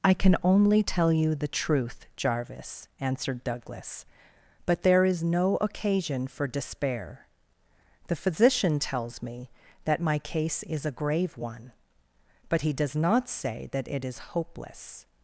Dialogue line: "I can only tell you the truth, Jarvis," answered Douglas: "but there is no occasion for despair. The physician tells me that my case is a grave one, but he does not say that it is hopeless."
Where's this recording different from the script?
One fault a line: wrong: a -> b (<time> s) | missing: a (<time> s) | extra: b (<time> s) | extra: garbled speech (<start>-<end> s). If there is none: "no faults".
no faults